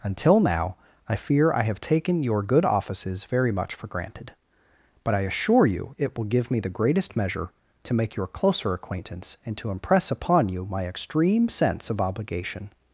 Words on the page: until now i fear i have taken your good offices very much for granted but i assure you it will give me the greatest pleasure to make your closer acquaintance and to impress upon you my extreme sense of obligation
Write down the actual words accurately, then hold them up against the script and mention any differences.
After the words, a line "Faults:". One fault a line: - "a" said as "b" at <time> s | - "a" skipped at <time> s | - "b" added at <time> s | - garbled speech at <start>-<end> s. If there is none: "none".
until now i fear i have taken your good offices very much for granted but i assure you it will give me the greatest measure to make your closer acquaintance and to impress upon you my extreme sense of obligation
Faults:
- "pleasure" said as "measure" at 7.2 s